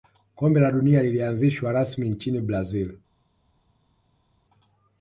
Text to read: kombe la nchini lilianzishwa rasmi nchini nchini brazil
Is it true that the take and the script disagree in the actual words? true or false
true